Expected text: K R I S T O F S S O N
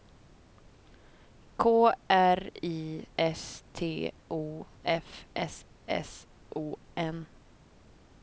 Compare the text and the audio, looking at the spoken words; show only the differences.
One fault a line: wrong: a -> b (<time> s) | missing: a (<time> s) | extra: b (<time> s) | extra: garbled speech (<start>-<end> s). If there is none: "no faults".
no faults